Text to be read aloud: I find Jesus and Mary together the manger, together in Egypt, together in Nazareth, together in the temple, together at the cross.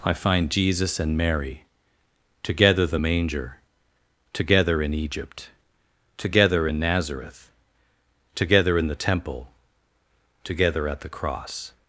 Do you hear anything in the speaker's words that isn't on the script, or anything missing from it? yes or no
no